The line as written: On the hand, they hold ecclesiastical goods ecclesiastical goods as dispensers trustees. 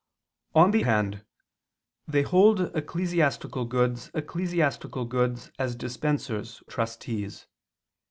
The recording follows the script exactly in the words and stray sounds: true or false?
true